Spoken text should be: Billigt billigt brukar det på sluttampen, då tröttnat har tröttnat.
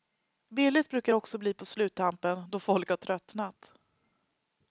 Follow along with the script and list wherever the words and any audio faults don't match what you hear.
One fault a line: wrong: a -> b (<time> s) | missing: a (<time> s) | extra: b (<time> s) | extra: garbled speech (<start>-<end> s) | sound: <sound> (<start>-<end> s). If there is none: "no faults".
missing: billigt (0.9 s)
extra: också bli (1.1 s)
wrong: tröttnat -> folk (2.6 s)